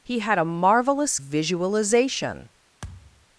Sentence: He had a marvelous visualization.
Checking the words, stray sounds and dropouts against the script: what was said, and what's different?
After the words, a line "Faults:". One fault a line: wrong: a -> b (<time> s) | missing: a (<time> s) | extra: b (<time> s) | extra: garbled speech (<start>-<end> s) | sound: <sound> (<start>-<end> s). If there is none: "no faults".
He had a marvelous visualization.
Faults:
sound: thud (2.8-3.3 s)